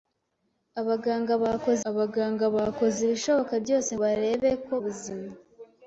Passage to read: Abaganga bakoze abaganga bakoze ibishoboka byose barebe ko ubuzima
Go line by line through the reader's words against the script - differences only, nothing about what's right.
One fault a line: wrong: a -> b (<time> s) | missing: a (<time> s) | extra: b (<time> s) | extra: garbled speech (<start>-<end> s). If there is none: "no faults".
no faults